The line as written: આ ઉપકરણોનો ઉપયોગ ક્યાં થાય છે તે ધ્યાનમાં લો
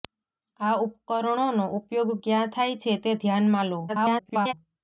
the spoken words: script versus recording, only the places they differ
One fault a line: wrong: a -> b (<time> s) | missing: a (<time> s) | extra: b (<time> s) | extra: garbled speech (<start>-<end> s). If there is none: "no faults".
extra: garbled speech (3.9-4.5 s)